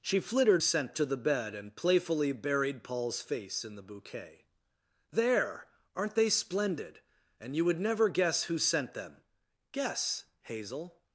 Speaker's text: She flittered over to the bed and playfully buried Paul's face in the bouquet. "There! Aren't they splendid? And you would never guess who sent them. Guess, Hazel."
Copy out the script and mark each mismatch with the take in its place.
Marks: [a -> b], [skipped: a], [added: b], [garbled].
She flittered [over -> sent] to the bed and playfully buried Paul's face in the bouquet. "There! Aren't they splendid? And you would never guess who sent them. Guess, Hazel."